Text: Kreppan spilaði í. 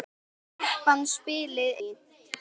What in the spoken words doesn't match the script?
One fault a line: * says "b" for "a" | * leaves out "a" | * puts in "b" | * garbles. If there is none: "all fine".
all fine